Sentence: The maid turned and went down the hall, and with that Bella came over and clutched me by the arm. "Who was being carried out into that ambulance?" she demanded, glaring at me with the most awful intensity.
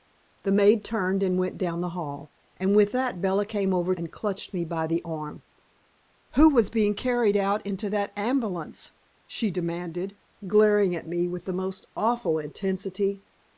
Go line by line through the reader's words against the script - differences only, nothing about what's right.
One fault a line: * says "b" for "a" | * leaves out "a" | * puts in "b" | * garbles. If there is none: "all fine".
all fine